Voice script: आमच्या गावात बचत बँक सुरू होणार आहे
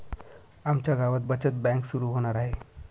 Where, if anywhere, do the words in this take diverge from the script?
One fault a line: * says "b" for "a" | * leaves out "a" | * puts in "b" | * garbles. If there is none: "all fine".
all fine